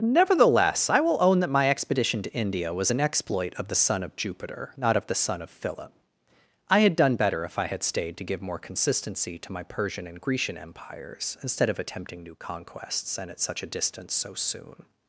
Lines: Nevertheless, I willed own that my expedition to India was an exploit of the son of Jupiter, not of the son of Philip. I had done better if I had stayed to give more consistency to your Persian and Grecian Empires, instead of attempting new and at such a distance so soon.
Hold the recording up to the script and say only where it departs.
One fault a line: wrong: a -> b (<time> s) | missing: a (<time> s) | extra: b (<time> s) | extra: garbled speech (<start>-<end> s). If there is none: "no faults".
wrong: willed -> will (1.0 s)
wrong: your -> my (9.5 s)
extra: conquests (12.4 s)